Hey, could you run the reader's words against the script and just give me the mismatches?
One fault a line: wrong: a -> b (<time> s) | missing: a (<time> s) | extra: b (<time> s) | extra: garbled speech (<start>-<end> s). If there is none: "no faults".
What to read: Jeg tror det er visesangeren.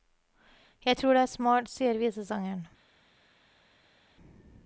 extra: smart sier (1.3 s)